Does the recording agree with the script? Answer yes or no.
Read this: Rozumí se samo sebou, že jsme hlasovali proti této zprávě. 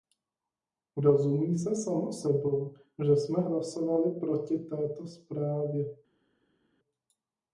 yes